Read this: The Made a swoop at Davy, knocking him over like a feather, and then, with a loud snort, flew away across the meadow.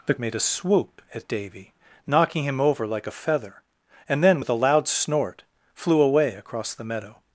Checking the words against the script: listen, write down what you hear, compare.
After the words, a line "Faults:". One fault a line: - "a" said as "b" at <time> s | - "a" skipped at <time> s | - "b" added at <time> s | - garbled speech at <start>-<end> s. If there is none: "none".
The Made a swoop at Davy, knocking him over like a feather, and then, with a loud snort, flew away across the meadow.
Faults:
none